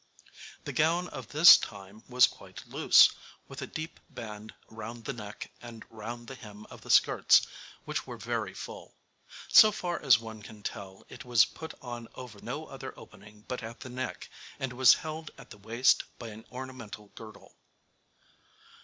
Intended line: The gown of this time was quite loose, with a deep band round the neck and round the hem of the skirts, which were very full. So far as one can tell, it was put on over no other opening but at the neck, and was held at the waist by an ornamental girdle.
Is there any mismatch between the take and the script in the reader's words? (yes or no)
no